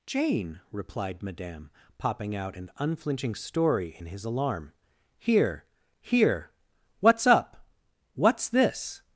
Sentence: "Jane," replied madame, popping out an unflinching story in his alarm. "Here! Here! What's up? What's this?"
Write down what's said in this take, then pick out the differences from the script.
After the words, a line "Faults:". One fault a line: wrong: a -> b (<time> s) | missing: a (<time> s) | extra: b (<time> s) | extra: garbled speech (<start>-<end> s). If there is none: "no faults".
"Jane," replied madame, popping out an unflinching story in his alarm. "Here! Here! What's up? What's this?"
Faults:
no faults